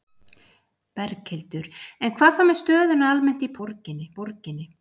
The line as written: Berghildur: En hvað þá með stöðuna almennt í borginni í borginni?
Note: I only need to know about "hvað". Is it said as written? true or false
true